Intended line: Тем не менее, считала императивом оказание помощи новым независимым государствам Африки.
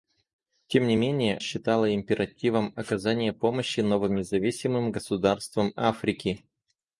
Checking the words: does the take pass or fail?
pass